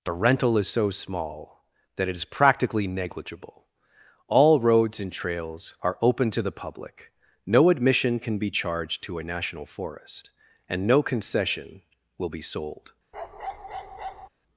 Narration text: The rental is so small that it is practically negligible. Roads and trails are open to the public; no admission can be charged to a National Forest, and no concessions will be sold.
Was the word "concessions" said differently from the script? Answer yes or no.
yes